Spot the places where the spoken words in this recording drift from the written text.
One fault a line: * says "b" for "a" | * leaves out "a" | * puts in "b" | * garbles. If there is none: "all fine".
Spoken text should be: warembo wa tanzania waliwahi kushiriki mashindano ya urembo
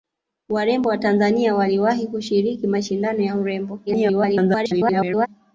* garbles